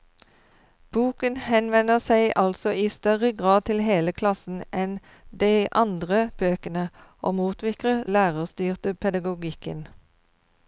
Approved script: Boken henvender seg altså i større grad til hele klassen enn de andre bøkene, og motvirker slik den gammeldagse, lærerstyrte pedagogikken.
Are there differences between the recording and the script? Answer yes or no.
yes